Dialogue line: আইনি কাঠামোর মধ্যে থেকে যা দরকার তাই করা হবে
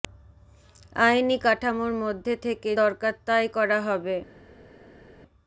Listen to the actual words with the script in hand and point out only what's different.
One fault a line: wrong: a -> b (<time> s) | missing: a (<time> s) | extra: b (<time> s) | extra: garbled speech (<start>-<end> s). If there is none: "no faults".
missing: যা (2.7 s)